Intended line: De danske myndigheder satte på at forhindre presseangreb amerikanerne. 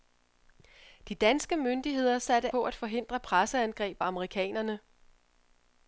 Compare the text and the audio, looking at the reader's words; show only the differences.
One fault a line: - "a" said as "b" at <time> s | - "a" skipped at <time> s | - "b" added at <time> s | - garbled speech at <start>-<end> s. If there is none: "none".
none